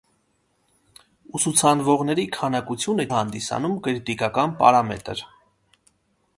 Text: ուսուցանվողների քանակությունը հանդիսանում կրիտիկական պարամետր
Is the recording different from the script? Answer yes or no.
no